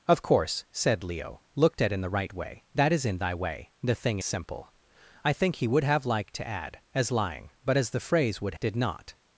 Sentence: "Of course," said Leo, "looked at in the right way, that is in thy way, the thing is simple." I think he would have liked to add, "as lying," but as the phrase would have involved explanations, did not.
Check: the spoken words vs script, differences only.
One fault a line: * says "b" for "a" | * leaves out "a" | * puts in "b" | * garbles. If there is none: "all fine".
* leaves out "is"
* leaves out "have involved explanations"